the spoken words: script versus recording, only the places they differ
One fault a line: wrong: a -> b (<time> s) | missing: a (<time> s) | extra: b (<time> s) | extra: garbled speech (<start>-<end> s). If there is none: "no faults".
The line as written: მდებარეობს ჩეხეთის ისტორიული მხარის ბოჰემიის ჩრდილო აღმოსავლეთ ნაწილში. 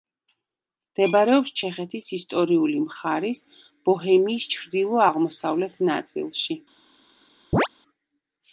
no faults